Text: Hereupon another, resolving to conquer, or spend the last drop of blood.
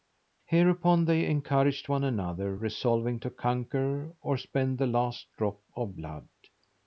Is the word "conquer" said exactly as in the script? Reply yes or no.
yes